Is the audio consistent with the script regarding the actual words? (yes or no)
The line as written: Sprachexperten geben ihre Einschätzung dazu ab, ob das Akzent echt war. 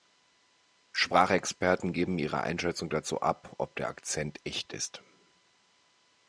no